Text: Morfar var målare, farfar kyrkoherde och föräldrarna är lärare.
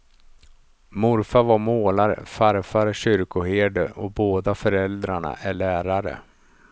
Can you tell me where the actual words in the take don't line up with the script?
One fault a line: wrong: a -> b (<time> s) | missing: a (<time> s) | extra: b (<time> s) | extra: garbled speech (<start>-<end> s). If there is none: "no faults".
extra: båda (4.1 s)